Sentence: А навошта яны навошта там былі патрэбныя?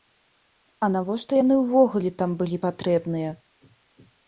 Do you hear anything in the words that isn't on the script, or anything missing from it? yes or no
yes